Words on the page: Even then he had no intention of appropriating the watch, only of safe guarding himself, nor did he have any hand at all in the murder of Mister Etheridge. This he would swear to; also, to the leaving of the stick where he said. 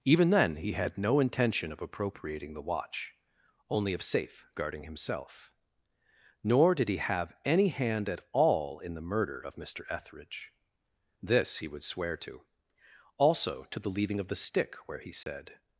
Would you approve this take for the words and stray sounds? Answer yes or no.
no